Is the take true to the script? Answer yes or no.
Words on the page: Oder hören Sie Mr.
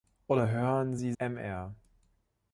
yes